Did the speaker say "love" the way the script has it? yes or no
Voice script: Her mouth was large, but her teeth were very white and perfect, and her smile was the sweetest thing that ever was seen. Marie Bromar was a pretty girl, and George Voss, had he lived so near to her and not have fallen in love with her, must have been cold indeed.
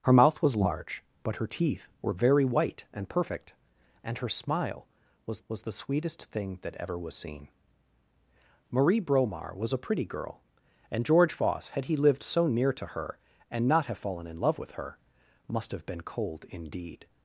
yes